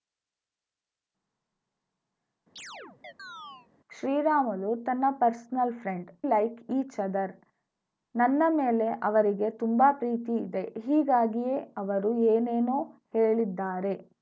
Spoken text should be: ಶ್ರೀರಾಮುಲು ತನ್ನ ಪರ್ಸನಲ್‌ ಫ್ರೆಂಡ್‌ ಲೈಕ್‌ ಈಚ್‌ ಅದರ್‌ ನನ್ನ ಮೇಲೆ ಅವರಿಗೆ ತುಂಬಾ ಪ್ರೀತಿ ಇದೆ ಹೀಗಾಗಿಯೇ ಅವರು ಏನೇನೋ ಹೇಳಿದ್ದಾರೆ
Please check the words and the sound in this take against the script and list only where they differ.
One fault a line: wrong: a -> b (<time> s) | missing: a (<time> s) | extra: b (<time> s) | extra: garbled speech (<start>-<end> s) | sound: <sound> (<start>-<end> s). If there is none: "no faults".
sound: chirp (2.6-3.7 s)